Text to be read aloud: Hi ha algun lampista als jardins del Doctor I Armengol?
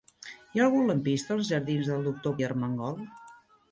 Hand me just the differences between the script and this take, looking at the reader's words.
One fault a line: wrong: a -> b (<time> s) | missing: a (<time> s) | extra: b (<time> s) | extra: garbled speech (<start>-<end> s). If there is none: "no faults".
no faults